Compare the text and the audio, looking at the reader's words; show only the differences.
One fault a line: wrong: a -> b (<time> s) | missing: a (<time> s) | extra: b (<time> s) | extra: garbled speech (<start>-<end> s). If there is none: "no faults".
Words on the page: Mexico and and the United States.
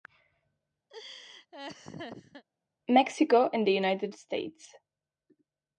missing: and (3.7 s)